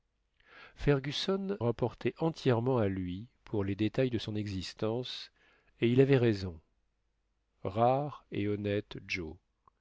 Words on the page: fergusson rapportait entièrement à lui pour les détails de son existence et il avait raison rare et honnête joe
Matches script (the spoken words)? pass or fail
pass